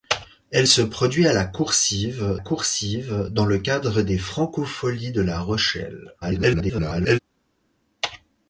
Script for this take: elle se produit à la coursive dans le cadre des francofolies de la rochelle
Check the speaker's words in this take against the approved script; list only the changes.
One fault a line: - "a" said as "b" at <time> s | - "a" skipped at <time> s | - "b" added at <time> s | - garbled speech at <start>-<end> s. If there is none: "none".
- "coursive" added at 2.3 s
- garbled speech at 6.2-7.2 s